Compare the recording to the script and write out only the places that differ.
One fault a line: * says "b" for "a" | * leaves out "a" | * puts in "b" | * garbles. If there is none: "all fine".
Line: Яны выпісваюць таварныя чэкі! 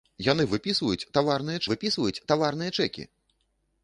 * puts in "выпісваюць таварныя"